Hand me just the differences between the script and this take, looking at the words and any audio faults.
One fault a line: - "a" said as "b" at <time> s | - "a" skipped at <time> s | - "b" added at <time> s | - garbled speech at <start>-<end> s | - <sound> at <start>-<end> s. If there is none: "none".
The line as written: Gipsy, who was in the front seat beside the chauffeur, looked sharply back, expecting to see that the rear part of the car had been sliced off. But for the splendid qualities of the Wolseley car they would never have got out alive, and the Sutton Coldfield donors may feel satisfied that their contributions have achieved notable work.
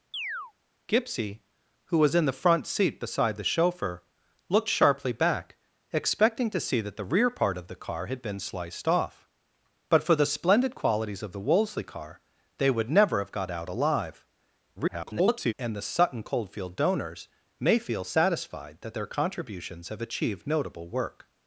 - chirp at 0.1-0.5 s
- garbled speech at 14.8-15.5 s